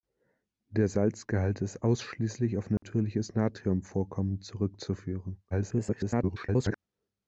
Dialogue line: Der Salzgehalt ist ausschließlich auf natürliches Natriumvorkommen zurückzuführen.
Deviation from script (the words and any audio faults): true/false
true